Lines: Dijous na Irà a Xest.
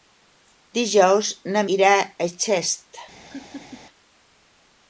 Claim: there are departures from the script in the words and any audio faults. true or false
true